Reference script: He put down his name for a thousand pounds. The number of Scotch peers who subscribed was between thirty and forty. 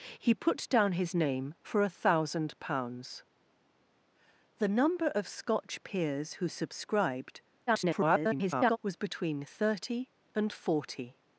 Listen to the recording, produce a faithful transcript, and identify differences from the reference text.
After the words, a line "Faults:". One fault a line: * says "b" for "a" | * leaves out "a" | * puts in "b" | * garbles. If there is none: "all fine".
He put down his name for a thousand pounds. The number of Scotch peers who subscribed [garbled] was between thirty and forty.
Faults:
* garbles